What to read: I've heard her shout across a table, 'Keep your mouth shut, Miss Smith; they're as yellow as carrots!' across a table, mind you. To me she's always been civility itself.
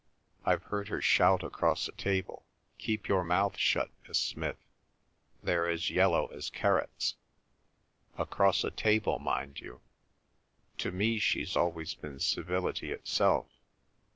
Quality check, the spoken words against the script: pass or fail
pass